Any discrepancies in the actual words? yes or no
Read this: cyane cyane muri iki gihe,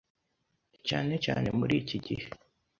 no